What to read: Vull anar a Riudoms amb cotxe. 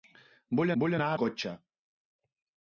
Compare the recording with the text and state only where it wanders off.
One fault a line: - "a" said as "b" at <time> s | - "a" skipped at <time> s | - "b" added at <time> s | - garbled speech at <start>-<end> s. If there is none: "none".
- "vull" added at 0.8 s
- "Riudoms amb" skipped at 1.1 s